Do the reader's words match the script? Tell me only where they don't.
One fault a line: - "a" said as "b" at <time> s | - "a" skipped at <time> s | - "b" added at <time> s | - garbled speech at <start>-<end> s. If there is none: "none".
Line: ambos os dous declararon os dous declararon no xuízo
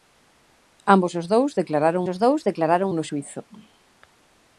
none